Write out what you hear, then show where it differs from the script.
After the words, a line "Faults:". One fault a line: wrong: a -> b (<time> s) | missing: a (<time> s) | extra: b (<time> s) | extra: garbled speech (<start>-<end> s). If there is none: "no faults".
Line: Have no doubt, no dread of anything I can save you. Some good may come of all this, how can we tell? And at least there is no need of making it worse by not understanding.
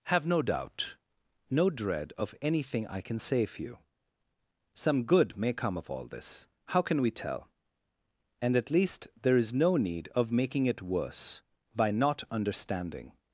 Have no doubt, no dread of anything I can save you. Some good may come of all this, how can we tell? And at least there is no need of making it worse by not understanding.
Faults:
no faults